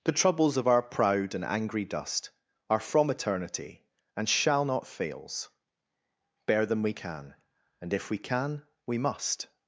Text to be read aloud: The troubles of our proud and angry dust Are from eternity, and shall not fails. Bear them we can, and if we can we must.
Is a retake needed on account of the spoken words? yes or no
no